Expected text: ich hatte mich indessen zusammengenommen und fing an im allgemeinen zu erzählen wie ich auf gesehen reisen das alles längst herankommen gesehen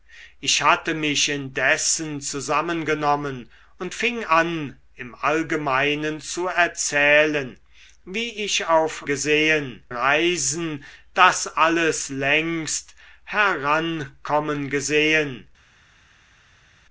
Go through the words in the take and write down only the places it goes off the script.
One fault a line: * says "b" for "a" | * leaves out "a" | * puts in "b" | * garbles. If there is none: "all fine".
all fine